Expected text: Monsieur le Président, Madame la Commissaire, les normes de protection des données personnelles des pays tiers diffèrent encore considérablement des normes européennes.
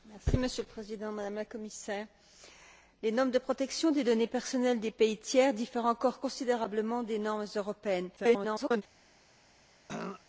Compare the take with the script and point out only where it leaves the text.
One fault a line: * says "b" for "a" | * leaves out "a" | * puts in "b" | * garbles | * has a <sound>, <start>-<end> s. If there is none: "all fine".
* garbles
* has a throat clearing, 9.9-10.2 s